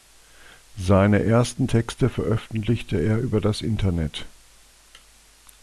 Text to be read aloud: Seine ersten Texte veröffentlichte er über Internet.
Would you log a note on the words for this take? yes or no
yes